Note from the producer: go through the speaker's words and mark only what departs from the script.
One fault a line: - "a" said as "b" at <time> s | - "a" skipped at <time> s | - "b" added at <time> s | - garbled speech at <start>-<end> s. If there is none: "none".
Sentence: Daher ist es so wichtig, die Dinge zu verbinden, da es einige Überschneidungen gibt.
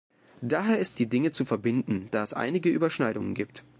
- "es so wichtig" skipped at 1.0 s